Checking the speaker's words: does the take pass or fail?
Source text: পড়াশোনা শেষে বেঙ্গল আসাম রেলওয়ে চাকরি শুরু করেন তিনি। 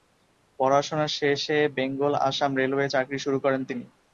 pass